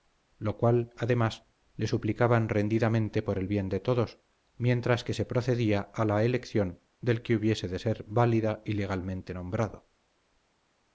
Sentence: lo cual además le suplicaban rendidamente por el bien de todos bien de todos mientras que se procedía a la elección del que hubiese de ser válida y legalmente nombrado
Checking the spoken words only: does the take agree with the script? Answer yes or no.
no